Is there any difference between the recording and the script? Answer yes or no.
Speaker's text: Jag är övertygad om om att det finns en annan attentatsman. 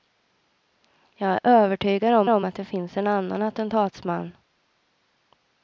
no